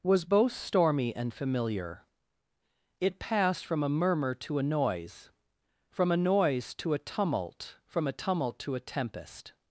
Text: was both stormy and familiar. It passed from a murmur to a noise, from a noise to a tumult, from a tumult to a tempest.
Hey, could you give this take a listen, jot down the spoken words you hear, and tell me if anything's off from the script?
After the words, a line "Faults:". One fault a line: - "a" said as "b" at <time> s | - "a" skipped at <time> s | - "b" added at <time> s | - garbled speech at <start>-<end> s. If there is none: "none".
was both stormy and familiar. It passed from a murmur to a noise, from a noise to a tumult, from a tumult to a tempest.
Faults:
none